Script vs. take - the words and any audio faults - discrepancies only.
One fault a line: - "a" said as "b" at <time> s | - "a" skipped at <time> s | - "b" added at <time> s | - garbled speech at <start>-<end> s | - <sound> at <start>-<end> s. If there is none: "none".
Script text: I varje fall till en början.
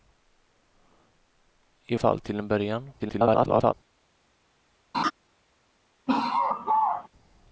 - "varje" skipped at 1.9 s
- garbled speech at 3.0-3.7 s
- laugh at 4.9-5.1 s
- laugh at 6.1-7.1 s